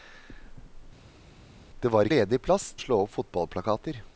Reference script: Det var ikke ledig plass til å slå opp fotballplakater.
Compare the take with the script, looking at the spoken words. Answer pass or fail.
fail